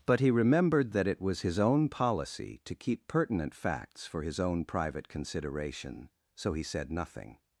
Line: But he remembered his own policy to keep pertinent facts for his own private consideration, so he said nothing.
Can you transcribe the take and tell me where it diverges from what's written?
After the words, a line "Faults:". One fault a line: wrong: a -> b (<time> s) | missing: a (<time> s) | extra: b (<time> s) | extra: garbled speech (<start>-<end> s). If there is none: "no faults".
But he remembered that it was his own policy to keep pertinent facts for his own private consideration, so he said nothing.
Faults:
extra: that it was (0.9 s)